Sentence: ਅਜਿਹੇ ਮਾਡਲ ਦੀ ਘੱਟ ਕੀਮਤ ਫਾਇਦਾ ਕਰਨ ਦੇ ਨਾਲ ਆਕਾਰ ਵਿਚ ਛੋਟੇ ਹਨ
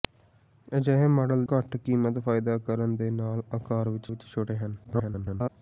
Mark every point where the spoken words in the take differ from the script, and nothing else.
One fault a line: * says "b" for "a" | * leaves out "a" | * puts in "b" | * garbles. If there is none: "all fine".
* leaves out "ਦੀ"
* puts in "ਵਿਚ"
* garbles